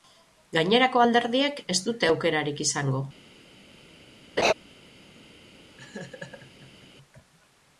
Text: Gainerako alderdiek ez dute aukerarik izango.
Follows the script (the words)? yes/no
yes